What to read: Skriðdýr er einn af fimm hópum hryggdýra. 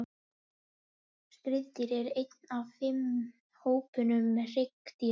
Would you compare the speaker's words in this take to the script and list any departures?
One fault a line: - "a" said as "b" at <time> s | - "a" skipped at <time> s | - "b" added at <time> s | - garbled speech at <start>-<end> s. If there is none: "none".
none